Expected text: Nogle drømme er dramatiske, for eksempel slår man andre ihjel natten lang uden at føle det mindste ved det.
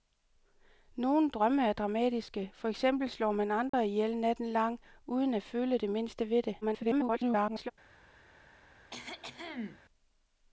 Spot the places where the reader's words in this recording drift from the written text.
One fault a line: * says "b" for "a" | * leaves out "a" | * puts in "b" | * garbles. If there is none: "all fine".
* garbles